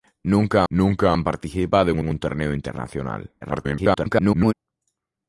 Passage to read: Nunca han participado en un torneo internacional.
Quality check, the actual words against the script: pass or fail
fail